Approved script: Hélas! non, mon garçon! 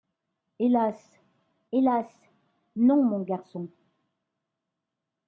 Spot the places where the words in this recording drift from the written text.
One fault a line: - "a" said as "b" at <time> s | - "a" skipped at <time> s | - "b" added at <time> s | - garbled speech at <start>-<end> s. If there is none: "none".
- "hélas" added at 1.7 s